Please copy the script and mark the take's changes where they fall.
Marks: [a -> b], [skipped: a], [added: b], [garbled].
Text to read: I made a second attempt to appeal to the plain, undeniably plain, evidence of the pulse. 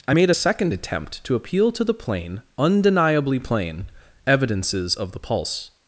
I made a second attempt to appeal to the plain, undeniably plain, [evidence -> evidences] of the pulse.